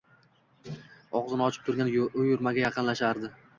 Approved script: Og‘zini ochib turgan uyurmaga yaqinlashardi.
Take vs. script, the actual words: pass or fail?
pass